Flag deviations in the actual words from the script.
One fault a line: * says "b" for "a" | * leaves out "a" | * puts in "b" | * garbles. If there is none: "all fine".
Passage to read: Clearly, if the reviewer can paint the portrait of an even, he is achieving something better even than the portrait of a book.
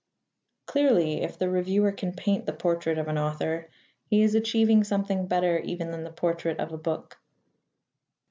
* says "author" for "even"